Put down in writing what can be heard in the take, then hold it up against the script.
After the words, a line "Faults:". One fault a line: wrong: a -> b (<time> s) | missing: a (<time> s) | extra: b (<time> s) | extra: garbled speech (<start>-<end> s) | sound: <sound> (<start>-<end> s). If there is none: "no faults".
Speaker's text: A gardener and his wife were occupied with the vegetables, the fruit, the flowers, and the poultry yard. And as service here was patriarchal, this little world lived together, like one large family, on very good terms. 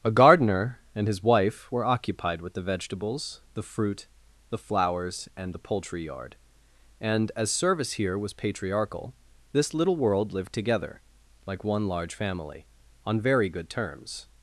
A gardener and his wife were occupied with the vegetables, the fruit, the flowers, and the poultry yard. And as service here was patriarchal, this little world lived together, like one large family, on very good terms.
Faults:
no faults